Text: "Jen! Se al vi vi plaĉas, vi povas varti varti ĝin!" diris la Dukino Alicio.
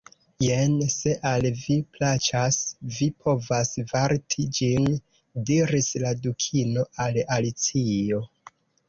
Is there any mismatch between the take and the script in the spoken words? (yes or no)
yes